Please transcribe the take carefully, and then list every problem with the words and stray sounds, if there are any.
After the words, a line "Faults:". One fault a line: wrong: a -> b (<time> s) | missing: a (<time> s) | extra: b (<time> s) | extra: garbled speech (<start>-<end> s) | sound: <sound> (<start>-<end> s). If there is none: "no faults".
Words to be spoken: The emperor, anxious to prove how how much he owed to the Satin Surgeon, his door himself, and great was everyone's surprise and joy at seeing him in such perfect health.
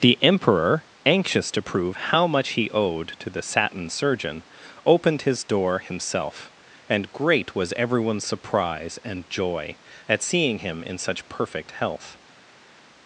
The emperor, anxious to prove how much he owed to the Satin Surgeon, opened his door himself, and great was everyone's surprise and joy at seeing him in such perfect health.
Faults:
missing: how (2.3 s)
extra: opened (4.8 s)